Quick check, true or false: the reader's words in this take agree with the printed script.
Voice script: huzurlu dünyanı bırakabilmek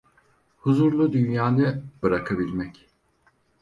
true